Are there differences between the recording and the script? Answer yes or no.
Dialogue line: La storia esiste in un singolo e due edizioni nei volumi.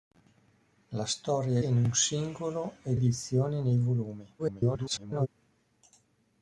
yes